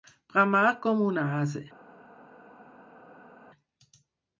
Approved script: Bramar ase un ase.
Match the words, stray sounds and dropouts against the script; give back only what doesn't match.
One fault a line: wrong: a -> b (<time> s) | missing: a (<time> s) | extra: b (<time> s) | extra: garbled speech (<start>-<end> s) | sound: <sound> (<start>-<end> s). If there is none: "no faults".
wrong: ase -> com (0.8 s)